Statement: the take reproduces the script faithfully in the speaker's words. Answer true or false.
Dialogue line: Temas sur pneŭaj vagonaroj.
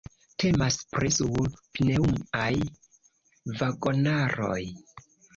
false